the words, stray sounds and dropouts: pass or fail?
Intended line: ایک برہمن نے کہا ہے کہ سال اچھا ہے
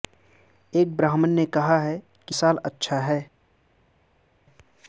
pass